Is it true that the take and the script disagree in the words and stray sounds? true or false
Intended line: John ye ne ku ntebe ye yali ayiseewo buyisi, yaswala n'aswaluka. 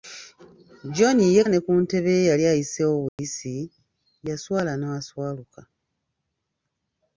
true